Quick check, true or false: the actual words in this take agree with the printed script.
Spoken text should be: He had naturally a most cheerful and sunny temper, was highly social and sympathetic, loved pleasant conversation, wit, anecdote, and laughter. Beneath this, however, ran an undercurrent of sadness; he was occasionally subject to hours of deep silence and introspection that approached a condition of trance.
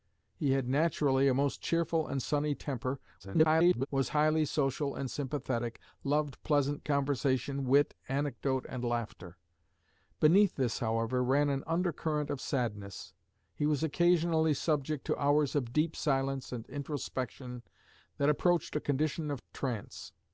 false